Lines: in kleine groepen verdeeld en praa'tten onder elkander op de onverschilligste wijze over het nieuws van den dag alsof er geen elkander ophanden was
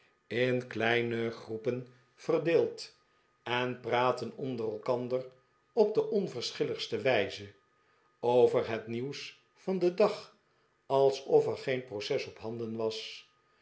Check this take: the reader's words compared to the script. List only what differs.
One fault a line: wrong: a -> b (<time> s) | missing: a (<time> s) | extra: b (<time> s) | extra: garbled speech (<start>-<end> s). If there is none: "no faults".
wrong: elkander -> proces (11.8 s)